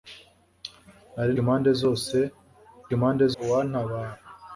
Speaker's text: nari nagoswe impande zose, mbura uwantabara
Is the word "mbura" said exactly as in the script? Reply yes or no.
no